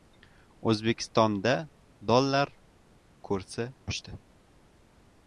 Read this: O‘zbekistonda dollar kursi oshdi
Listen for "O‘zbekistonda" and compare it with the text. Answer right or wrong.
right